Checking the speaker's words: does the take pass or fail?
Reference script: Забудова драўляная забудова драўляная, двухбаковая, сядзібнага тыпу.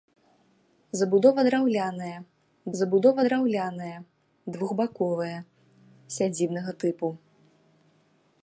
pass